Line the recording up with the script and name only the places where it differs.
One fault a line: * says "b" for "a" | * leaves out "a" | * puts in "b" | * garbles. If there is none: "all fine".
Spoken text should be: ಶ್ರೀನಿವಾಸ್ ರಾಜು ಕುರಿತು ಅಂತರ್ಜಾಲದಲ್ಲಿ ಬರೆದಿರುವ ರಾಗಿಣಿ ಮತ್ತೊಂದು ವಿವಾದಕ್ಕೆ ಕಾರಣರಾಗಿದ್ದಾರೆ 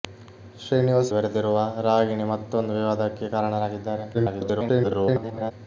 * leaves out "ರಾಜು ಕುರಿತು ಅಂತರ್ಜಾಲದಲ್ಲಿ"
* garbles